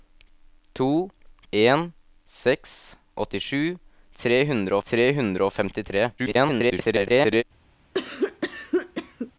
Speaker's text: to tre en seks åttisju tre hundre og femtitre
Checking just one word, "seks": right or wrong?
right